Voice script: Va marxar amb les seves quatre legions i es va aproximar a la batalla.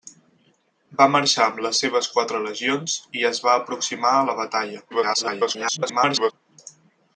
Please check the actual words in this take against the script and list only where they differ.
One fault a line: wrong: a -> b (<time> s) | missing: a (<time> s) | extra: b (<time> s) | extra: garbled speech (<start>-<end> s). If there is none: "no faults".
extra: garbled speech (4.9-6.3 s)